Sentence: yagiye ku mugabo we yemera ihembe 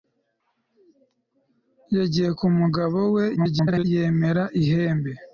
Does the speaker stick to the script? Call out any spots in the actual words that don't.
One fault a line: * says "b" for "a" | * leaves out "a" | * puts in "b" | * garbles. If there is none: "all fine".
* garbles